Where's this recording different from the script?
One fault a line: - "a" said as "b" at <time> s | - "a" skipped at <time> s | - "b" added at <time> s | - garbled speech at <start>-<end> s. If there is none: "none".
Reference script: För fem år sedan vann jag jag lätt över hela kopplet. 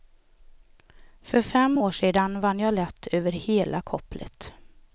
- "jag" skipped at 2.7 s